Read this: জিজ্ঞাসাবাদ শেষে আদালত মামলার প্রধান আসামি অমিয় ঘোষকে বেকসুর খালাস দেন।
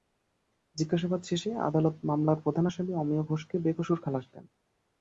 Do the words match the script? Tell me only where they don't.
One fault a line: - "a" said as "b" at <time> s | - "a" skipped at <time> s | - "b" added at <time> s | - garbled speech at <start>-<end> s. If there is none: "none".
none